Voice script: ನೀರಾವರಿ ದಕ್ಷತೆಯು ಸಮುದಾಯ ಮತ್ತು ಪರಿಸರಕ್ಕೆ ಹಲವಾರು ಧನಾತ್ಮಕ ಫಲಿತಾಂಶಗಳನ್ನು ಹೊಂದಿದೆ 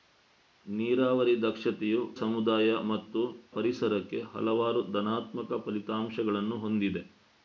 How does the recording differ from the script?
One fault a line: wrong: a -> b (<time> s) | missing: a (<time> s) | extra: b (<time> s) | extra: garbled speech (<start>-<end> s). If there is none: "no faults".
no faults